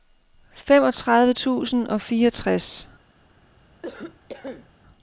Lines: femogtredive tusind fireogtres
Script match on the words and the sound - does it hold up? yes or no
no